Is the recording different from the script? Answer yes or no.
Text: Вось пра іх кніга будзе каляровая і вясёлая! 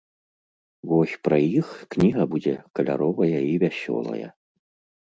no